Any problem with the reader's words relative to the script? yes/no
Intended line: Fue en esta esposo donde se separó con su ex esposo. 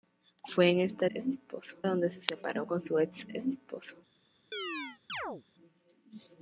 no